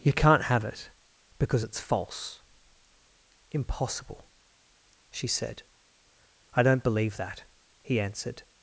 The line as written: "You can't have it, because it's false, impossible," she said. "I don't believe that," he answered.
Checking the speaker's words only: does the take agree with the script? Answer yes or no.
yes